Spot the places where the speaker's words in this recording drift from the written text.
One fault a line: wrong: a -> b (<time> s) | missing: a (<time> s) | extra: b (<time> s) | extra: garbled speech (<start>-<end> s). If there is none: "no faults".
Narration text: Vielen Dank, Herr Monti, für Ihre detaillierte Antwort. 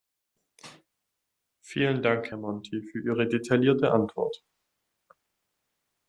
no faults